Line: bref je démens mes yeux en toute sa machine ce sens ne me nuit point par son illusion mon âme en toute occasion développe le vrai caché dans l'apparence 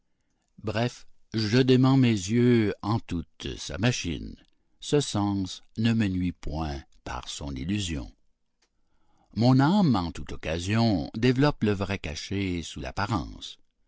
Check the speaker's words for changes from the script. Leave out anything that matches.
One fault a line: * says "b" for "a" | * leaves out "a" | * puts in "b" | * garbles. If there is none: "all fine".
* says "sous" for "dans"